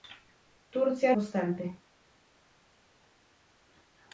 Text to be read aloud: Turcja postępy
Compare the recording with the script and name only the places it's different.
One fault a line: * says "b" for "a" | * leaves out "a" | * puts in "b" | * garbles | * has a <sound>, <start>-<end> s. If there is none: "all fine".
all fine